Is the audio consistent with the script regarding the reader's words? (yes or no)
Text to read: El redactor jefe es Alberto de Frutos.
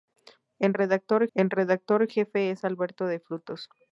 no